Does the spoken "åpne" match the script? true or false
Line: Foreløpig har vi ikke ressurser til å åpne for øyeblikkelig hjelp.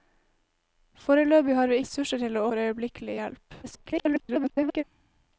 false